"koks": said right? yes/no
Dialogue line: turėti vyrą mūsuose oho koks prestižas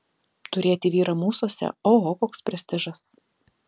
yes